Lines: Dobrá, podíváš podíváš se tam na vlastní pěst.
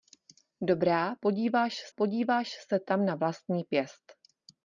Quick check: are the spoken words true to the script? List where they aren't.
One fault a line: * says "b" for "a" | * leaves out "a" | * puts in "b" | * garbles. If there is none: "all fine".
all fine